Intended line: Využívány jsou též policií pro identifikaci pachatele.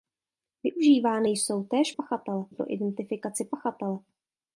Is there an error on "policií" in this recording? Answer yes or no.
yes